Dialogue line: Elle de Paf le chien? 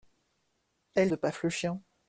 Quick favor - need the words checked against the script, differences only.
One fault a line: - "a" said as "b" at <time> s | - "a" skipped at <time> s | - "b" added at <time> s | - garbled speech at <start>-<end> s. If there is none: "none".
none